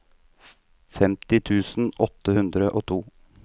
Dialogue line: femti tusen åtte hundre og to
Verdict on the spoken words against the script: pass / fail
pass